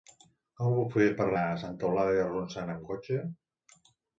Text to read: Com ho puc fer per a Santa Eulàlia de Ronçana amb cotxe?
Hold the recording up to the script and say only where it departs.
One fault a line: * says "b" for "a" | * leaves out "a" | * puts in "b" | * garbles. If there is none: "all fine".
all fine